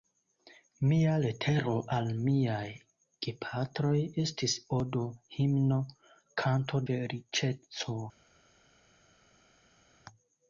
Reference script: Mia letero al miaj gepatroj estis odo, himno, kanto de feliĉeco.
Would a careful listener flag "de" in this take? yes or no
yes